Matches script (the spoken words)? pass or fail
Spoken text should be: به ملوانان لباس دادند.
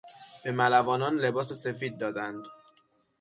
fail